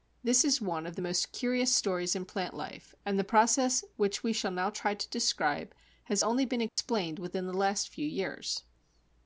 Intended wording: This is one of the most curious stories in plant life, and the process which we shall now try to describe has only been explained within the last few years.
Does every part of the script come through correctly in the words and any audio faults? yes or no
no